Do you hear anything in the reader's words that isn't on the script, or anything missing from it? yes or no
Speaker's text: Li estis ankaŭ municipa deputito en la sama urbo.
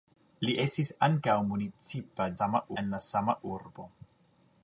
yes